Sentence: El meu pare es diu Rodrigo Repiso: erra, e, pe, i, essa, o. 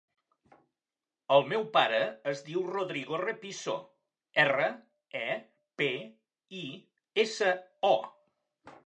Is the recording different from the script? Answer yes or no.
no